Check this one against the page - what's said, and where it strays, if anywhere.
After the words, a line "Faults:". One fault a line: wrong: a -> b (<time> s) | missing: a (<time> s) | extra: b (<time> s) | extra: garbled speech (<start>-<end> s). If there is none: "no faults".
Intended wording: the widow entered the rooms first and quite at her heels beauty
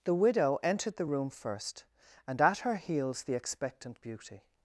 the widow entered the room first and at her heels the expectant beauty
Faults:
wrong: rooms -> room (1.0 s)
missing: quite (2.4 s)
extra: the expectant (3.2 s)